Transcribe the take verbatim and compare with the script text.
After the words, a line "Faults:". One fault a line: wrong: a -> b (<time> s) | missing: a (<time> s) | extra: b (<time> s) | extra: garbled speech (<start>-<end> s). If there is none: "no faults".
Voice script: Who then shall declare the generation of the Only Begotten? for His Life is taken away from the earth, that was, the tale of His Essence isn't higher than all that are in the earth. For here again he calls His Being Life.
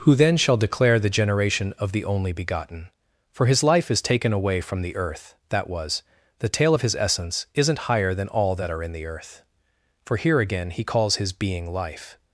Who then shall declare the generation of the Only Begotten? for His Life is taken away from the earth, that was, the tale of His Essence isn't higher than all that are in the earth. For here again he calls His Being Life.
Faults:
no faults